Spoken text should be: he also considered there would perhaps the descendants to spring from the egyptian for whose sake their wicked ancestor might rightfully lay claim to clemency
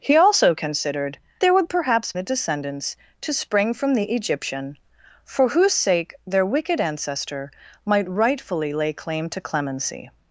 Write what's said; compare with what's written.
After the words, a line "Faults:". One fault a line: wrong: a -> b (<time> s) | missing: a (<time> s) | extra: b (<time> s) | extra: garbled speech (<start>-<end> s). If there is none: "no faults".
he also considered there would perhaps the descendants to spring from the egyptian for whose sake their wicked ancestor might rightfully lay claim to clemency
Faults:
no faults